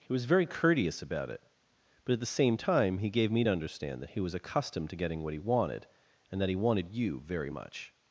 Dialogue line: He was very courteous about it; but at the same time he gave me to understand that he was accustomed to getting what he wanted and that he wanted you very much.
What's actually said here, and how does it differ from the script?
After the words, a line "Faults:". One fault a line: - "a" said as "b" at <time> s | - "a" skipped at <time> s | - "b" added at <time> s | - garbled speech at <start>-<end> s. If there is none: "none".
He was very courteous about it; but at the same time he gave me to understand that he was accustomed to getting what he wanted and that he wanted you very much.
Faults:
none